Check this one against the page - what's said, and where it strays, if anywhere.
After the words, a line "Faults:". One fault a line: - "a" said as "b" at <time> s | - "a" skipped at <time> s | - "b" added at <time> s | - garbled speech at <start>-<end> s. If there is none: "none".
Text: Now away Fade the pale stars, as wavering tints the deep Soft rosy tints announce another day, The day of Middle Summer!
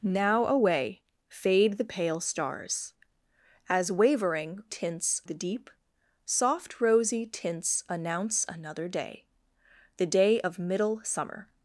Now away Fade the pale stars, as wavering tints the deep Soft rosy tints announce another day, The day of Middle Summer!
Faults:
none